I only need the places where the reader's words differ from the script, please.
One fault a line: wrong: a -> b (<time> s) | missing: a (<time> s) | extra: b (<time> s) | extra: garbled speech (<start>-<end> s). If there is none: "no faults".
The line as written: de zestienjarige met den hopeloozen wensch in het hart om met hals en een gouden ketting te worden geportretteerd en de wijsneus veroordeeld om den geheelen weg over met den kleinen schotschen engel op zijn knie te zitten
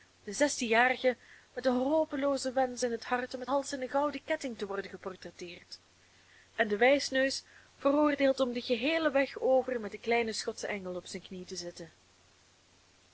no faults